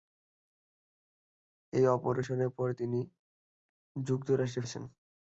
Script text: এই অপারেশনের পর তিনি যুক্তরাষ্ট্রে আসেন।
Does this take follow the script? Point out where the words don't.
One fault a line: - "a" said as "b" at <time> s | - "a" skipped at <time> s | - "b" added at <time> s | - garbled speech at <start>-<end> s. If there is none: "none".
none